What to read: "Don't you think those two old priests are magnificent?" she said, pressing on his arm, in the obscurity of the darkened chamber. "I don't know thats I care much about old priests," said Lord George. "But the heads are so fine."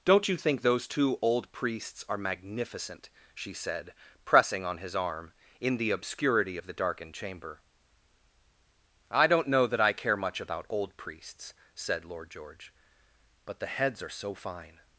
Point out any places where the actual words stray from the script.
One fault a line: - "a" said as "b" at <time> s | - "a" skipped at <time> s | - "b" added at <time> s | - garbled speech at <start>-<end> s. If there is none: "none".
- "thats" said as "that" at 9.7 s